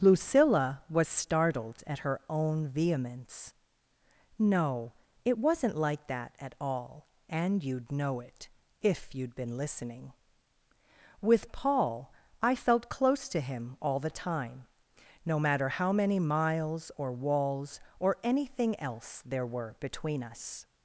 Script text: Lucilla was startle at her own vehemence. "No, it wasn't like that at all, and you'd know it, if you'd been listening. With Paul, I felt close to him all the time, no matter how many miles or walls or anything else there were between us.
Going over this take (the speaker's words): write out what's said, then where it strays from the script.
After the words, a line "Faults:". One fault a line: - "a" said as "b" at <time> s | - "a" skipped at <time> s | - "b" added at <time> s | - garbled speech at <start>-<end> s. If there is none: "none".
Lucilla was startled at her own vehemence. "No, it wasn't like that at all, and you'd know it, if you'd been listening. With Paul, I felt close to him all the time, no matter how many miles or walls or anything else there were between us.
Faults:
- "startle" said as "startled" at 1.1 s